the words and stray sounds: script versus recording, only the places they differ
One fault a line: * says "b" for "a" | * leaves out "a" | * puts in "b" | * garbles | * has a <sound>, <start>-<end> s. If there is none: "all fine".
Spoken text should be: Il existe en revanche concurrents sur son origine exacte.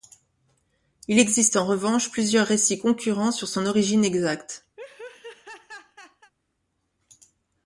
* puts in "plusieurs récits"
* has a laugh, 4.8-6.3 s